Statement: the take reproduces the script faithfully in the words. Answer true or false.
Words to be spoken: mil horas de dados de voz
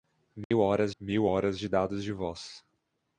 false